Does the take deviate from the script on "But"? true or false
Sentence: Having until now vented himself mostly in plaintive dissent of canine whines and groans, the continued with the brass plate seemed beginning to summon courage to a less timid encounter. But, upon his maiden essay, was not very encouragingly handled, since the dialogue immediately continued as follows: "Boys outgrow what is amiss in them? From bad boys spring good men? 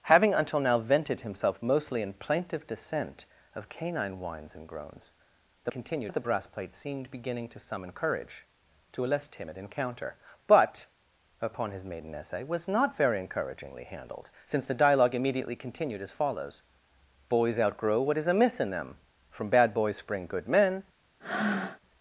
false